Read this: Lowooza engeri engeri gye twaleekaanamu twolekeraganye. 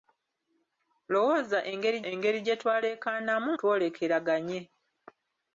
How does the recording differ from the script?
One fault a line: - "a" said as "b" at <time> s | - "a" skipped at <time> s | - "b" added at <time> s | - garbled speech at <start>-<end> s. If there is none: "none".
none